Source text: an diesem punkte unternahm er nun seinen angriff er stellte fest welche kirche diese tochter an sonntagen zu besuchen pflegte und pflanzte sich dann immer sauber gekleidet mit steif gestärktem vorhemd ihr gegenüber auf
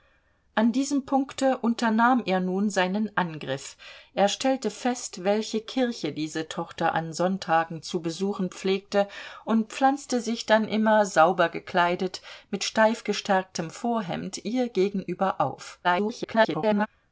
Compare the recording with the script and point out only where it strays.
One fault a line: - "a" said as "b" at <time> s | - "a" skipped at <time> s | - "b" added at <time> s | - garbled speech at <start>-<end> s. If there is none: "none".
- garbled speech at 15.8-16.9 s